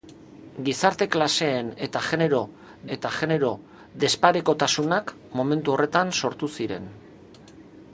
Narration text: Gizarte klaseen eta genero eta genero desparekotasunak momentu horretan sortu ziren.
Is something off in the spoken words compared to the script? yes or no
no